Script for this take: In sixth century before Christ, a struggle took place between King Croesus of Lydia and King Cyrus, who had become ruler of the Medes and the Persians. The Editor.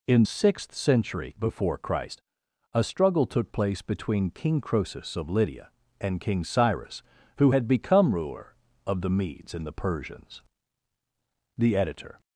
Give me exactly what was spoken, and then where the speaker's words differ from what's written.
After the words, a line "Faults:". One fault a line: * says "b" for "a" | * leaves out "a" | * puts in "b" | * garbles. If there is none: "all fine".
In sixth century before Christ, a struggle took place between King Croesus of Lydia and King Cyrus, who had become ruler of the Medes and the Persians. The Editor.
Faults:
all fine